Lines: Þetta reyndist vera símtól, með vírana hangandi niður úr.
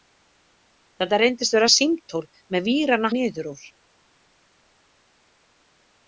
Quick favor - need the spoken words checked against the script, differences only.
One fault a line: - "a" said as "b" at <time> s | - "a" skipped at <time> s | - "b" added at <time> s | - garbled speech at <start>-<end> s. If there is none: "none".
- "hangandi" skipped at 3.1 s